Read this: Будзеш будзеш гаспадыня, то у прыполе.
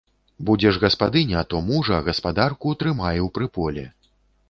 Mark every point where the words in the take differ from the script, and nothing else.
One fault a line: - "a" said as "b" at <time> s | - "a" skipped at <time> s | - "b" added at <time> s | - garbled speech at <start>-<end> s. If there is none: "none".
- "будзеш" skipped at 0.8 s
- "мужа гаспадарку трымай" added at 1.7 s